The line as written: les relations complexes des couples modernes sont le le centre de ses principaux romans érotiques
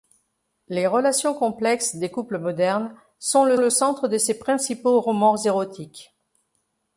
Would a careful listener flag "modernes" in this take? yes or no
no